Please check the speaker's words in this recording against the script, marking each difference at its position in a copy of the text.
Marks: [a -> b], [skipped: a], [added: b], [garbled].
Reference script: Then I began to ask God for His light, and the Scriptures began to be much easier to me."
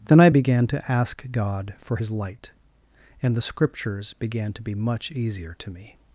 Then I began to ask God for His light, and the Scriptures began to be much easier to me."